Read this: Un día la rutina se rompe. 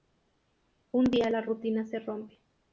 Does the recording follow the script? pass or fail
pass